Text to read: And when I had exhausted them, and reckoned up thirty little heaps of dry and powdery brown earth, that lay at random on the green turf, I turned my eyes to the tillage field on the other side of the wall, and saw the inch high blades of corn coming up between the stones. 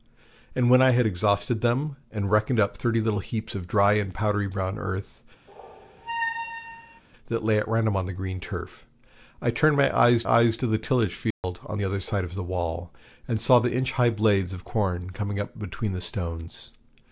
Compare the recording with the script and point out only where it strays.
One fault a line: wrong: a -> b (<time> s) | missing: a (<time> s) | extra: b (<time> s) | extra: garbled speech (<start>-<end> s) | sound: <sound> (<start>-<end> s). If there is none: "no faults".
sound: squeak (5.5-7.0 s)
extra: eyes (10.3 s)
sound: dropout (11.3-11.4 s)